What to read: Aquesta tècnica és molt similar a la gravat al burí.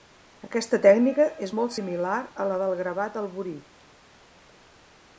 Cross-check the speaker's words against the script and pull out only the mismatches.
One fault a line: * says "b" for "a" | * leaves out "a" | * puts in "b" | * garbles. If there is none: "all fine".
* puts in "del"